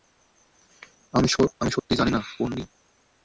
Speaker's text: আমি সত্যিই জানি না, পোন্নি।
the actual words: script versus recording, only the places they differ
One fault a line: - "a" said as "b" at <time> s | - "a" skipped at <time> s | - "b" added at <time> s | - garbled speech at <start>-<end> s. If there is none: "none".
none